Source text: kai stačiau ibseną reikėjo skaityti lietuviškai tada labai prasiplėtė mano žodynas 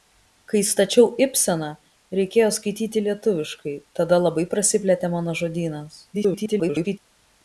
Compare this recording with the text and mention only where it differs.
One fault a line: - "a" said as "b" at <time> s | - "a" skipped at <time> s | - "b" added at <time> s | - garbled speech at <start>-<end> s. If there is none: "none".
- garbled speech at 6.1-7.0 s